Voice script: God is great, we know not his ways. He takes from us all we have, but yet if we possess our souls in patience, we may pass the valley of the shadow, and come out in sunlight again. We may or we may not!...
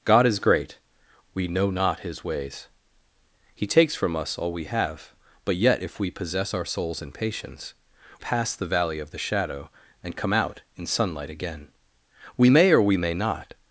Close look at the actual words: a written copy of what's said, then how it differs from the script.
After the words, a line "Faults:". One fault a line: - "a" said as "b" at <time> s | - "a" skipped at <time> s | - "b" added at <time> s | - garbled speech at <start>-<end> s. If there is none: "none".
God is great, we know not his ways. He takes from us all we have, but yet if we possess our souls in patience, pass the valley of the shadow, and come out in sunlight again. We may or we may not!...
Faults:
- "we may" skipped at 7.8 s